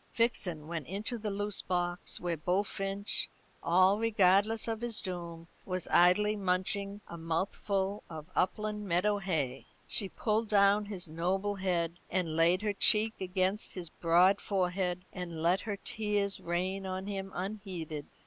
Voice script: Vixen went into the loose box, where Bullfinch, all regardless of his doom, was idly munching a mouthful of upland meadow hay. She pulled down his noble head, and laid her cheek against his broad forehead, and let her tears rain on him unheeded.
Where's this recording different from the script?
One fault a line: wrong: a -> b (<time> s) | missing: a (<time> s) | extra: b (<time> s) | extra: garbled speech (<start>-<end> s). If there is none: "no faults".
no faults